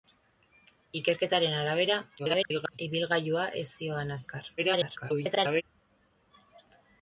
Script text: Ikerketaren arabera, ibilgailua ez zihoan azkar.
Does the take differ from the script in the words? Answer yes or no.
yes